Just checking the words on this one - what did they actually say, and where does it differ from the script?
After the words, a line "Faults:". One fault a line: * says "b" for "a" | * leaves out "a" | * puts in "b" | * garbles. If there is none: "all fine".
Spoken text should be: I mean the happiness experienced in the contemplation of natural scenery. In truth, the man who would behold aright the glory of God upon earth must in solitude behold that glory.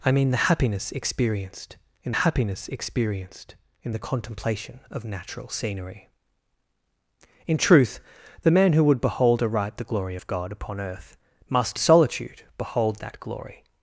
I mean the happiness experienced in happiness experienced in the contemplation of natural scenery. In truth, the man who would behold aright the glory of God upon earth must solitude behold that glory.
Faults:
* puts in "happiness experienced in"
* leaves out "in"